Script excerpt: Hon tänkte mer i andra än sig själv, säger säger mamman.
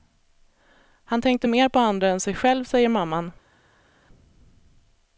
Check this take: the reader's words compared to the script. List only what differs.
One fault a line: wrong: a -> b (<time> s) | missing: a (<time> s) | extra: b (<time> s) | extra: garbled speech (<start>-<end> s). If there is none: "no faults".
wrong: Hon -> Han (1.0 s)
wrong: i -> på (1.7 s)
missing: säger (2.9 s)